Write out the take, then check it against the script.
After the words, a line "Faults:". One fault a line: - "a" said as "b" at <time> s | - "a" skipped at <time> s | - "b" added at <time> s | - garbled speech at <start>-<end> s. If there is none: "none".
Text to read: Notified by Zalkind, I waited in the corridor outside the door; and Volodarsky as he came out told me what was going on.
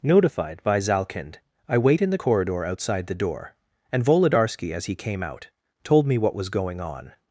Notified by Zalkind, I wait in the corridor outside the door; and Volodarsky as he came out told me what was going on.
Faults:
- "waited" said as "wait" at 1.8 s